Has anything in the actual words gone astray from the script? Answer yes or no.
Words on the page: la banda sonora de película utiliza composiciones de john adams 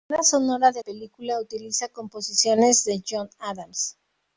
no